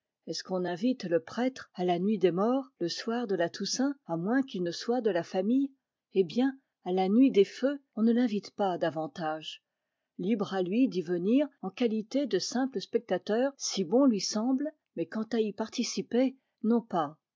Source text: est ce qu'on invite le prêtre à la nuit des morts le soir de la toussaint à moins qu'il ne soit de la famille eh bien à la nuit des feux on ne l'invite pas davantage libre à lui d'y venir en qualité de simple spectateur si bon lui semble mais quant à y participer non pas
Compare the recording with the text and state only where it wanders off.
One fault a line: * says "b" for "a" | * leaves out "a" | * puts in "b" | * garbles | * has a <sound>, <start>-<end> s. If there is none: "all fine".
all fine